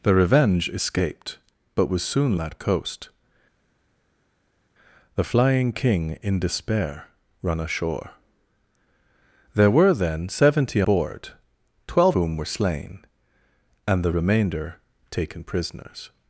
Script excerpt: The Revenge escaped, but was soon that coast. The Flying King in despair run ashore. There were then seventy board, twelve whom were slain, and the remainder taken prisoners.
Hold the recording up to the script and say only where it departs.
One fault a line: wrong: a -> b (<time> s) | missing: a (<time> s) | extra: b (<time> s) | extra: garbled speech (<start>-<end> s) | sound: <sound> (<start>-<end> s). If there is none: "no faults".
no faults